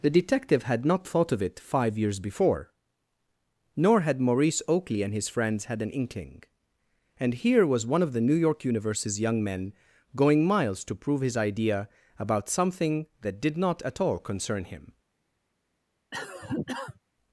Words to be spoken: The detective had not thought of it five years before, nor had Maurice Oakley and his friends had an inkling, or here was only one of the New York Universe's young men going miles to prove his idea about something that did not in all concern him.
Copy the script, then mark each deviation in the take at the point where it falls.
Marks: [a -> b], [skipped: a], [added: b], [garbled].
The detective had not thought of it five years before, nor had Maurice Oakley and his friends had an inkling, [or -> and] here was [skipped: only] one of the New York Universe's young men going miles to prove his idea about something that did not [in -> at] all concern him.